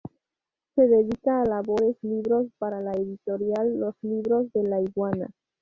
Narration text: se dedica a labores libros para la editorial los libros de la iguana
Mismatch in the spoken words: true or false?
false